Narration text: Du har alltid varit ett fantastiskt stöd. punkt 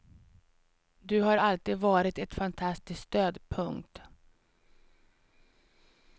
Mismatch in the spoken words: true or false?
false